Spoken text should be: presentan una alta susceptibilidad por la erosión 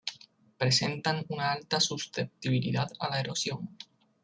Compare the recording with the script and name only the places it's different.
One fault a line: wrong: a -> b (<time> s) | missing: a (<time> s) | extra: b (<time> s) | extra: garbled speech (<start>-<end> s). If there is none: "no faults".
wrong: por -> a (3.0 s)